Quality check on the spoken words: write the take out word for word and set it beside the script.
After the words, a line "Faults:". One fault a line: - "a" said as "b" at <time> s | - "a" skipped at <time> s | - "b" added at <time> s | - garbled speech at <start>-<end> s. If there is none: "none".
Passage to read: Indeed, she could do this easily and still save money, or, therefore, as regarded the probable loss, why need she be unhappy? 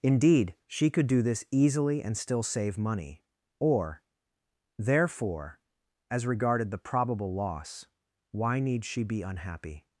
Indeed, she could do this easily and still save money, or, therefore, as regarded the probable loss, why need she be unhappy?
Faults:
none